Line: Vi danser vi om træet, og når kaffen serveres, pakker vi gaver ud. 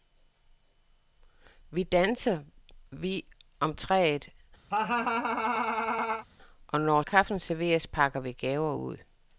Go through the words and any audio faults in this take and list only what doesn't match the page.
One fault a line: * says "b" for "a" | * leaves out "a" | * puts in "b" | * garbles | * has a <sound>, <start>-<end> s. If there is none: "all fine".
* has a laugh, 4.7-6.3 s